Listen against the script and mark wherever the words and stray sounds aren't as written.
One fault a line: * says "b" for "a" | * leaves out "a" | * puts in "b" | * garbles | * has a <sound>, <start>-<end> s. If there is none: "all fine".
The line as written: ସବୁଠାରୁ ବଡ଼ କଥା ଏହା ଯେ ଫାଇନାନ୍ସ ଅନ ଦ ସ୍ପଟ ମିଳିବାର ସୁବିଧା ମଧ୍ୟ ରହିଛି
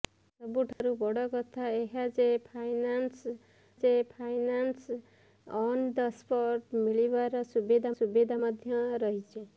* has a dropout, 0.7-0.8 s
* puts in "ଯେ ଫାଇନାନ୍ସ"
* puts in "ସୁବିଧା"